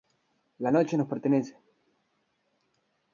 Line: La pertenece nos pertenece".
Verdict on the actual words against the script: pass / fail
fail